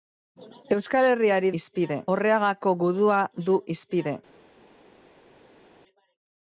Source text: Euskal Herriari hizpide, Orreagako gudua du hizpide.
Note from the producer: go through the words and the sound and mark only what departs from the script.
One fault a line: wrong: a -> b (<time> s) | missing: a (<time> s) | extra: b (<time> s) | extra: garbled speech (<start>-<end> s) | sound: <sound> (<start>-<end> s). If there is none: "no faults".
no faults